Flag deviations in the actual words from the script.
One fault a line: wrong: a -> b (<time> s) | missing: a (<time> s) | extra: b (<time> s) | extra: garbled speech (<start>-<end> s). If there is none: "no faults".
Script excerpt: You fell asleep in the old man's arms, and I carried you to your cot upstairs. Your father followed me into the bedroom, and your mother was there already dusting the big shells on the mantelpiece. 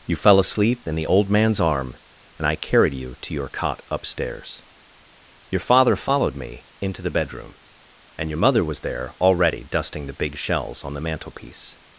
wrong: arms -> arm (1.6 s)